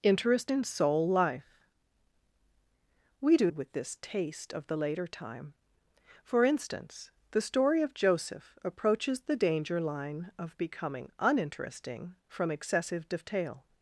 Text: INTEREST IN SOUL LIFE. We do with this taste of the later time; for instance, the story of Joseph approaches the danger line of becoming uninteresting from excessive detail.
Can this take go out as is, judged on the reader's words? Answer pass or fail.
pass